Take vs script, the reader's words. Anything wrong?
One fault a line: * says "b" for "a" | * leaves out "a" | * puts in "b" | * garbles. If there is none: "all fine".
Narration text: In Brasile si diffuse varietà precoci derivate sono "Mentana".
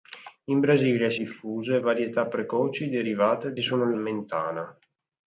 all fine